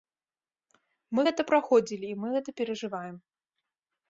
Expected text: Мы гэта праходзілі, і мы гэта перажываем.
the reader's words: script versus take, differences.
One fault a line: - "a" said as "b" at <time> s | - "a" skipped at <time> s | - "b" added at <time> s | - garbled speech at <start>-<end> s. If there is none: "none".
none